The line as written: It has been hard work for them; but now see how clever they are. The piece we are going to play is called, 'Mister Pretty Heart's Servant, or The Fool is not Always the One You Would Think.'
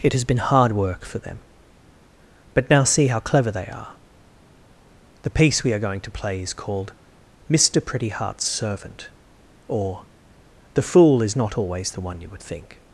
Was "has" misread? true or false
false